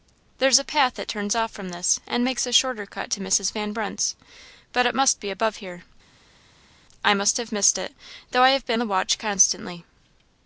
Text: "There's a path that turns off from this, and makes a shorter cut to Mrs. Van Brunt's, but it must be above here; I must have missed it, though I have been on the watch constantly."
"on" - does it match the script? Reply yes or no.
no